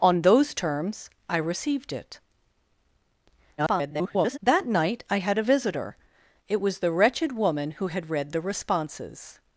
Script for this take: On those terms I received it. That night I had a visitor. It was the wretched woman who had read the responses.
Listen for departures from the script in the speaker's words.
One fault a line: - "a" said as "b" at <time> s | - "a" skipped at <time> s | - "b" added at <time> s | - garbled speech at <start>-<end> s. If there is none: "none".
- garbled speech at 3.6-4.4 s